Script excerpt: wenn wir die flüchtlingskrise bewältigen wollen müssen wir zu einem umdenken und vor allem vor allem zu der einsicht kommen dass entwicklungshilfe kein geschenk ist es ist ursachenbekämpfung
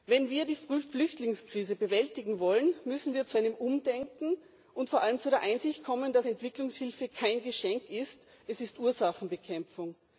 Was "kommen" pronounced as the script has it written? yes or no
yes